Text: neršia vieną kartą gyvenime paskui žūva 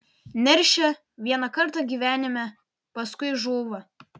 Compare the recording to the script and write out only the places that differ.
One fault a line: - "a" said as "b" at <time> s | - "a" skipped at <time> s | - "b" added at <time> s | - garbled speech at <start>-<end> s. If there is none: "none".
none